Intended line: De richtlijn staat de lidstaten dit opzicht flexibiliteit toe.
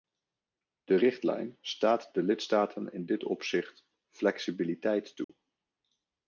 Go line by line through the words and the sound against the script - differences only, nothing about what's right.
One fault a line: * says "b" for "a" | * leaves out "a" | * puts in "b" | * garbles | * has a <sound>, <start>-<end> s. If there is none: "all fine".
* puts in "in"
* has a dropout, 5.2-5.3 s